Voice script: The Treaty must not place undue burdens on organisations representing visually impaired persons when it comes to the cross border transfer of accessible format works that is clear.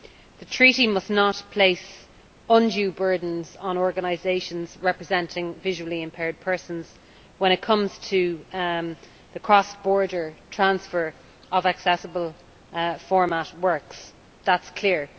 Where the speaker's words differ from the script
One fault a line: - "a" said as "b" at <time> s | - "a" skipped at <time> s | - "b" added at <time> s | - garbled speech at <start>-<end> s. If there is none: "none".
none